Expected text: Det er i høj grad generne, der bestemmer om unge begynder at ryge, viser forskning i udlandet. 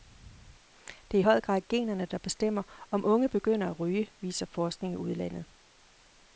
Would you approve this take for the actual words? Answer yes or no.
yes